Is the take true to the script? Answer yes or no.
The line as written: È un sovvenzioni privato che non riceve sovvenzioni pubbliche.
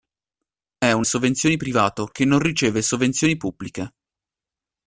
yes